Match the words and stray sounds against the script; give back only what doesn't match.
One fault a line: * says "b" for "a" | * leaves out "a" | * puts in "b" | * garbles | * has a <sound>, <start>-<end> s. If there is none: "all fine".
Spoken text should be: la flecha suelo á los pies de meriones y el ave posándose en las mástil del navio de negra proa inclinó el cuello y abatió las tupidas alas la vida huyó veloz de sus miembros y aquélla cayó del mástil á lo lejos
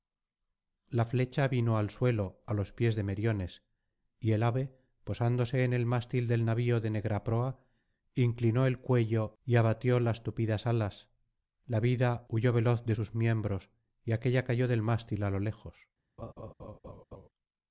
* puts in "vino al"
* says "el" for "las"
* has a laugh, 16.2-17.3 s